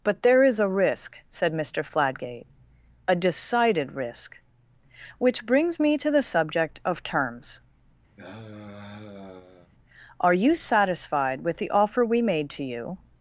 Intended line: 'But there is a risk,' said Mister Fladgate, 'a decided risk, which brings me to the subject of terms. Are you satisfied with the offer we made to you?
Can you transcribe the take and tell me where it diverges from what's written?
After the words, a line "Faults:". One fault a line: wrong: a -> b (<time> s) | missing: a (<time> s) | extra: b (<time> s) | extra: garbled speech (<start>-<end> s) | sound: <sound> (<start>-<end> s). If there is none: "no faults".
'But there is a risk,' said Mister Fladgate, 'a decided risk, which brings me to the subject of terms. Are you satisfied with the offer we made to you?
Faults:
sound: sigh (8.2-9.7 s)